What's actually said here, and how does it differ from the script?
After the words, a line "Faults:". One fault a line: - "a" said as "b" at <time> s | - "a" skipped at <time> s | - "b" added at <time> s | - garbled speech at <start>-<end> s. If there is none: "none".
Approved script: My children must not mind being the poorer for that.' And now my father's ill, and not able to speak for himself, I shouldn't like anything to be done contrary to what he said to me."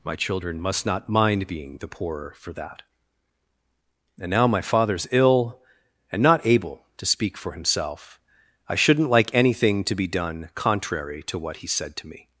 My children must not mind being the poorer for that.' And now my father's ill, and not able to speak for himself, I shouldn't like anything to be done contrary to what he said to me."
Faults:
none